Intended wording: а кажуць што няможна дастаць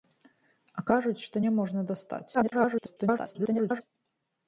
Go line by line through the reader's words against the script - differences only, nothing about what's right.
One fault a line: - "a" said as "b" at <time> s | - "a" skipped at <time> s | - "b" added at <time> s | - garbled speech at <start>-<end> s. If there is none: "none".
- garbled speech at 2.3-3.8 s